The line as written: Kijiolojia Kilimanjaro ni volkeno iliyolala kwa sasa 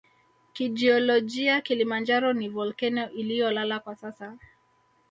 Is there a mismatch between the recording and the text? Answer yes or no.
no